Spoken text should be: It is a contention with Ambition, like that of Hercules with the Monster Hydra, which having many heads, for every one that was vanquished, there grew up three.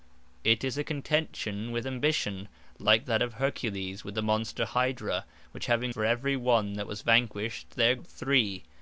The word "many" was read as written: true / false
false